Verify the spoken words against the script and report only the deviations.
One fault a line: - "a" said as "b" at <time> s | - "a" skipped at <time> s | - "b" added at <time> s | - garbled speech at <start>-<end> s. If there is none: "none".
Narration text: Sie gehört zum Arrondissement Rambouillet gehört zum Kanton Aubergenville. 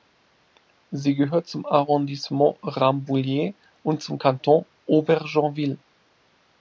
- "gehört" said as "und" at 3.8 s